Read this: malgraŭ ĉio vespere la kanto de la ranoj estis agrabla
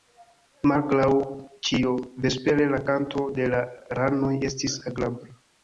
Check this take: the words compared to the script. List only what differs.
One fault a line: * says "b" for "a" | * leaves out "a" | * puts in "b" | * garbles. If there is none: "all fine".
all fine